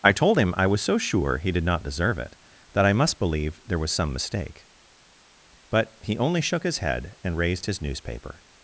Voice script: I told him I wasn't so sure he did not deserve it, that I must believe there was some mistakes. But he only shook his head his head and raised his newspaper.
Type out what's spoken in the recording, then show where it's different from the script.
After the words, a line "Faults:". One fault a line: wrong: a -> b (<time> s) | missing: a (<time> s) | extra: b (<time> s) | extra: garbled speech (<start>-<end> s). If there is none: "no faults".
I told him I was so sure he did not deserve it, that I must believe there was some mistake. But he only shook his head and raised his newspaper.
Faults:
wrong: wasn't -> was (0.7 s)
wrong: mistakes -> mistake (4.1 s)
missing: his head (7.2 s)